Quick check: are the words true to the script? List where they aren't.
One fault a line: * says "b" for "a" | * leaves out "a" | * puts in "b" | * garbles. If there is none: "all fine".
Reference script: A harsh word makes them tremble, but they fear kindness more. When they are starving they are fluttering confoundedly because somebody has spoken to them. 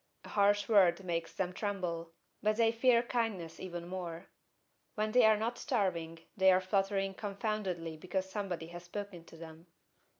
* puts in "even"
* puts in "not"